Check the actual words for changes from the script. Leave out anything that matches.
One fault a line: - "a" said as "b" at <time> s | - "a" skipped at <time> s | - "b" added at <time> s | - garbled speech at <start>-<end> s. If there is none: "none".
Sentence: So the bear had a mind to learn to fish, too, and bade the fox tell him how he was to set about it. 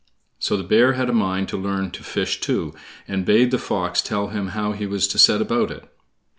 none